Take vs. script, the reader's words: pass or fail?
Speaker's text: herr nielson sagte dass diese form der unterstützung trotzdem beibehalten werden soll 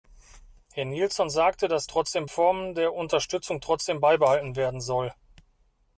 fail